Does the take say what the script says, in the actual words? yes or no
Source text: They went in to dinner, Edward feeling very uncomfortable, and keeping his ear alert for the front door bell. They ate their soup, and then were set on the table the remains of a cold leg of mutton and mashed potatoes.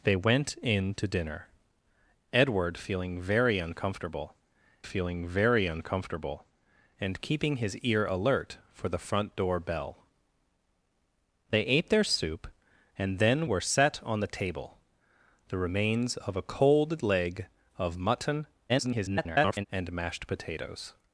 no